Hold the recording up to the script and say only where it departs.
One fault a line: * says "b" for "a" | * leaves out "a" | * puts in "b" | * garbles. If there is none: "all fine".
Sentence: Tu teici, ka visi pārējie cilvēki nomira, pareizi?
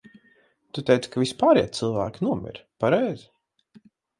all fine